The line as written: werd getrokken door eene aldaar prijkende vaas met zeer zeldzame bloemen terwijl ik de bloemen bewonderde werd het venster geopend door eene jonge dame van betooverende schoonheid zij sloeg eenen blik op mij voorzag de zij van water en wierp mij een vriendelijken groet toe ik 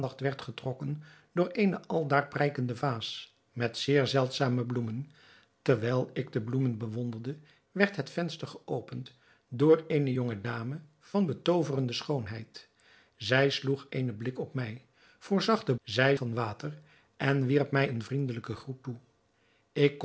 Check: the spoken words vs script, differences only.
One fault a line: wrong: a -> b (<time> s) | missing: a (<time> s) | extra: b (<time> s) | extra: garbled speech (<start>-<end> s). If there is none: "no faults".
no faults